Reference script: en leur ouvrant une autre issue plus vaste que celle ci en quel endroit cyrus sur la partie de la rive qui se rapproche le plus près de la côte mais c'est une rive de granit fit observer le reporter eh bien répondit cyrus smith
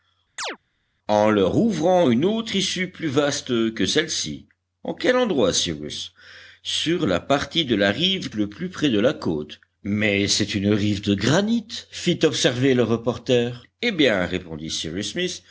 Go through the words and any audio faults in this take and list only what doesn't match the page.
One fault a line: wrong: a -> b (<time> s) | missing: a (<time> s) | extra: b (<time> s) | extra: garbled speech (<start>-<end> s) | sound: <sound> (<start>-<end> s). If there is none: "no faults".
sound: chirp (0.4-0.6 s)
missing: qui se rapproche (8.3 s)